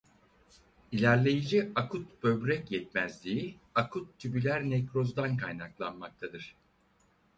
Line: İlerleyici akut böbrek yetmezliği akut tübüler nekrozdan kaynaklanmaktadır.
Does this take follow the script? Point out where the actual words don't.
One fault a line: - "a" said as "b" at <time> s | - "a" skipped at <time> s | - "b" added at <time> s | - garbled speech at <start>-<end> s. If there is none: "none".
none